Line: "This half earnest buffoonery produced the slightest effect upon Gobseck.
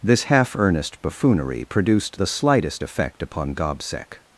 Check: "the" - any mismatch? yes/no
no